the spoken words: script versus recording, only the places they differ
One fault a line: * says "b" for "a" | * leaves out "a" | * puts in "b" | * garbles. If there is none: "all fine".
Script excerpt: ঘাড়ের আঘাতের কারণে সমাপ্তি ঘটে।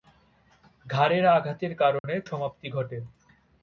all fine